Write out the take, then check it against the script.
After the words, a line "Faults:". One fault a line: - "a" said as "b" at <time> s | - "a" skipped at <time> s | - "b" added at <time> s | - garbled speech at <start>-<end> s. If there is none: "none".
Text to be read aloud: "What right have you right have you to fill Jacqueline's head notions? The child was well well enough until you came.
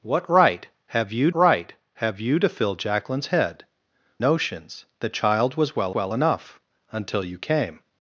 "What right have you right have you to fill Jacqueline's head notions? The child was well well enough until you came.
Faults:
none